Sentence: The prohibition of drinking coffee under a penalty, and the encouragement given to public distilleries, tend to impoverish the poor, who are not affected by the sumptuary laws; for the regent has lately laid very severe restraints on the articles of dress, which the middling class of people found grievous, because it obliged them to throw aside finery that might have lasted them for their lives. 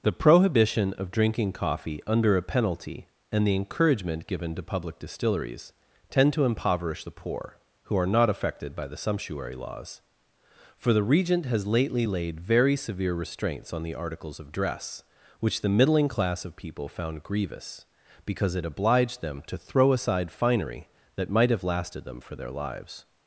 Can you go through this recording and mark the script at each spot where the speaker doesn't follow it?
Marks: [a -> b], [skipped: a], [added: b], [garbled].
The prohibition of drinking coffee under a penalty, and the encouragement given to public distilleries, tend to impoverish the poor, who are not affected by the sumptuary laws; for the regent has lately laid very severe restraints on the articles of dress, which the middling class of people found grievous, because it obliged them to throw aside finery that might have lasted them for their lives.